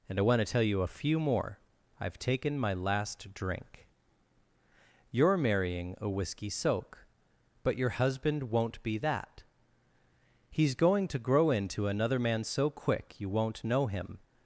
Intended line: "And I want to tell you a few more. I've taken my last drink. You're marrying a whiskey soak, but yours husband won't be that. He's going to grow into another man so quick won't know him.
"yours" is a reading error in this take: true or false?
true